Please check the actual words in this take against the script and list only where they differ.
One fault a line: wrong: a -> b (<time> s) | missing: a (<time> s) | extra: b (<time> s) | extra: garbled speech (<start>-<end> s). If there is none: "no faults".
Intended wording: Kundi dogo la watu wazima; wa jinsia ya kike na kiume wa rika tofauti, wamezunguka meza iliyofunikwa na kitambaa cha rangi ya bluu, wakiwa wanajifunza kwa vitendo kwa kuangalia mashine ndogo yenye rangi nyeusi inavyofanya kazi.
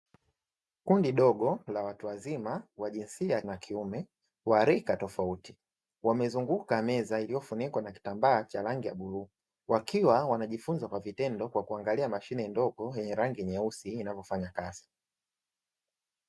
missing: kike (3.4 s)